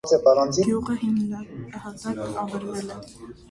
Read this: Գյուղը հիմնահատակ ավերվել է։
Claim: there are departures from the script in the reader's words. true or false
false